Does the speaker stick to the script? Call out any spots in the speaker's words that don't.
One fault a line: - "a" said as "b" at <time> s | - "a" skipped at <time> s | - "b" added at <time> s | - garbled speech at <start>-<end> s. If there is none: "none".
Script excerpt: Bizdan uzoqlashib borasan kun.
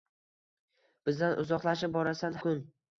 none